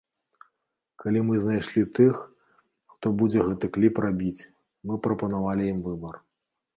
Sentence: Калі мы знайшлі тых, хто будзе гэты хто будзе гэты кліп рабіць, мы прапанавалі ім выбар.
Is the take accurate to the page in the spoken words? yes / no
no